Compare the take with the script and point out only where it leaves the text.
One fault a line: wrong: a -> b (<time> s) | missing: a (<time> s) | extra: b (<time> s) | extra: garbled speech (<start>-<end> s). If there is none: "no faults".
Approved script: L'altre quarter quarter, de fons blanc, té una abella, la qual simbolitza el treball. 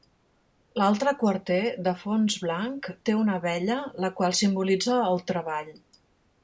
missing: quarter (1.6 s)